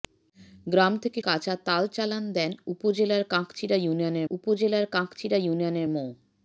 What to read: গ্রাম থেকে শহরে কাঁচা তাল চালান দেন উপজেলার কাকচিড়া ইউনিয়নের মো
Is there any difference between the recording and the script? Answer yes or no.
yes